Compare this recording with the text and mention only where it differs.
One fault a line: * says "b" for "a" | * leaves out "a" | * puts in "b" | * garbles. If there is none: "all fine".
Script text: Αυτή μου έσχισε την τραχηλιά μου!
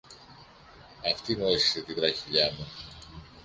all fine